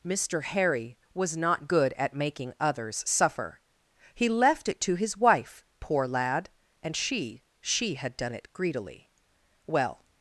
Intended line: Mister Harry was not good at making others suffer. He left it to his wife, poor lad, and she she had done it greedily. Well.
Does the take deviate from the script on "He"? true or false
false